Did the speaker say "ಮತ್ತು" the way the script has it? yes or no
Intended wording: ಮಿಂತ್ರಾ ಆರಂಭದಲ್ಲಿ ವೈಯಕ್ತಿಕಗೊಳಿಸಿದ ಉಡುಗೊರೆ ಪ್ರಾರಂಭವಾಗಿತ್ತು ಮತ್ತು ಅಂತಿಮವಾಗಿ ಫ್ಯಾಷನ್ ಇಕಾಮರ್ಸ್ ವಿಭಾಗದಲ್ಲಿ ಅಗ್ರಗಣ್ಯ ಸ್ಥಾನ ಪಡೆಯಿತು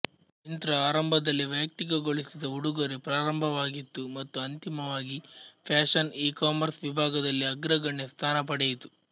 yes